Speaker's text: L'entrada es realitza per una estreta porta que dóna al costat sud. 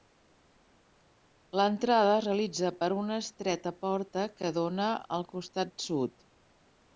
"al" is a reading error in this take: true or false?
false